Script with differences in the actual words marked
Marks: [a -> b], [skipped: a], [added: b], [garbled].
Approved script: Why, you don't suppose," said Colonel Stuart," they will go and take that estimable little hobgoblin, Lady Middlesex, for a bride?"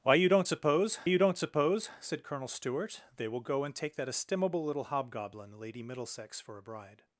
Why, you don't suppose," [added: you don't suppose] said Colonel Stuart," they will go and take that estimable little hobgoblin, Lady Middlesex, for a bride?"